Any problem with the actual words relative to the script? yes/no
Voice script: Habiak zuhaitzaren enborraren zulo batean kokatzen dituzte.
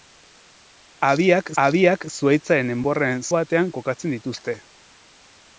yes